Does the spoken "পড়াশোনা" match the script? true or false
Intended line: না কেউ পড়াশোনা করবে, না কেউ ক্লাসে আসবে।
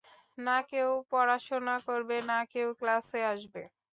true